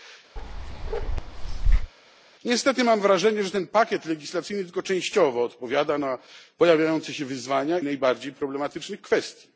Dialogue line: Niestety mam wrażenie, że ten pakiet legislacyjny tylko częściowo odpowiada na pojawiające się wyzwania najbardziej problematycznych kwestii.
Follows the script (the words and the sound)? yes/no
no